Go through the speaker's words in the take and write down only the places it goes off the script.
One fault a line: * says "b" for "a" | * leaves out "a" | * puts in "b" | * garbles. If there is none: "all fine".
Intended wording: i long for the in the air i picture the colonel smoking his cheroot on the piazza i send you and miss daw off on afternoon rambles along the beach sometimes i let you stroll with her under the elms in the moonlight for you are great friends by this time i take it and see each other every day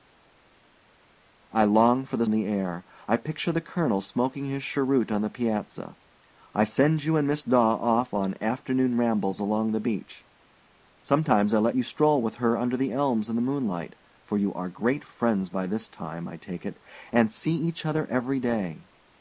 all fine